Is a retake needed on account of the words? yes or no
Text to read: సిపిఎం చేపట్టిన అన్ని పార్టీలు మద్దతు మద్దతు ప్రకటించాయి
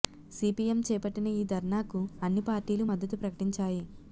yes